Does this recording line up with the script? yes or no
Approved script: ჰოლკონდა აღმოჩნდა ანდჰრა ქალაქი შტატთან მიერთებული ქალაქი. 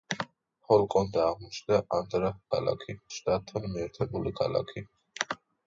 yes